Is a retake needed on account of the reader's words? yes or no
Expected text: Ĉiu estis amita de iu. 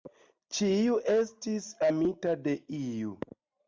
no